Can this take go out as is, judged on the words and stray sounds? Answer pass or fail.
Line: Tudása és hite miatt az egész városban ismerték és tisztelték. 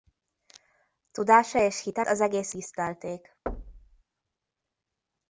fail